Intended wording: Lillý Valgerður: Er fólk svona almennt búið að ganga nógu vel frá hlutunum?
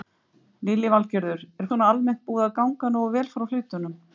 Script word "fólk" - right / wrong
wrong